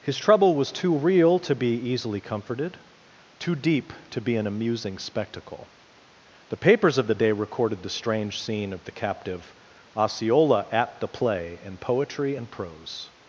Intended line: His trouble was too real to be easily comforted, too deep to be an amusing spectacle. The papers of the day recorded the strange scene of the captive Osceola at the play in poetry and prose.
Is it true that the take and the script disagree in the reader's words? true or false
false